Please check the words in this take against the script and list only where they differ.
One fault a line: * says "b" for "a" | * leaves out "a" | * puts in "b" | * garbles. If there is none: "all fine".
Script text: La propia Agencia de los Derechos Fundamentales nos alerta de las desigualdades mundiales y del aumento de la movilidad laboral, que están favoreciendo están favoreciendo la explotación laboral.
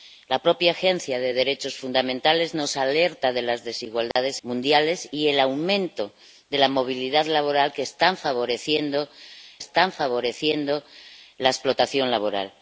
all fine